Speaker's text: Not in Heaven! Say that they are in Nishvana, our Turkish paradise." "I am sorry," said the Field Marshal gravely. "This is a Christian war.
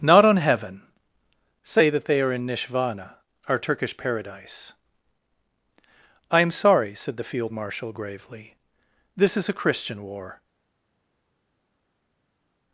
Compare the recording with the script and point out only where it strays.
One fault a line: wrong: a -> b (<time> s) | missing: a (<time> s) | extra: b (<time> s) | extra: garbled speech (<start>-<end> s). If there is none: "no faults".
wrong: in -> on (0.2 s)